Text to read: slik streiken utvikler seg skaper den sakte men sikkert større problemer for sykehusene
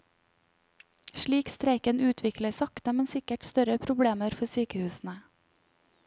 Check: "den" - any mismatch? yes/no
yes